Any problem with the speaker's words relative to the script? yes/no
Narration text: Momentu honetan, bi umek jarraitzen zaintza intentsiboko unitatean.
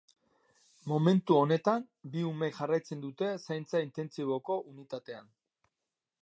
yes